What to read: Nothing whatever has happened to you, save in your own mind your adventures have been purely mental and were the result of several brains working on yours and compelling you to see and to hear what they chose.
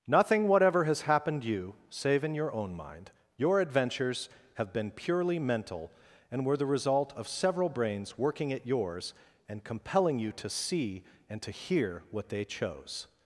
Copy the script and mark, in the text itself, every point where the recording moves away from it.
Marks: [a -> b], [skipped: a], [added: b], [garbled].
Nothing whatever has happened [skipped: to] you, save in your own mind your adventures have been purely mental and were the result of several brains working [on -> at] yours and compelling you to see and to hear what they chose.